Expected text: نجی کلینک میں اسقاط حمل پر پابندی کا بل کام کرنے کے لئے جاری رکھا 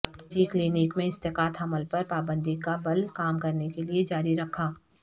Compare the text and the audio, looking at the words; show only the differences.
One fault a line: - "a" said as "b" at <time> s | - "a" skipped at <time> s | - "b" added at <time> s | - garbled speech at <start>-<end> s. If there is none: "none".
none